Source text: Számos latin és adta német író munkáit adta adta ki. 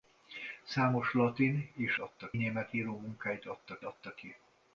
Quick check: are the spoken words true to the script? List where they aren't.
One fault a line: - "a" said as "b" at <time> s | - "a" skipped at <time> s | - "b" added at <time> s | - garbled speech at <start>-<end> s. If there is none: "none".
none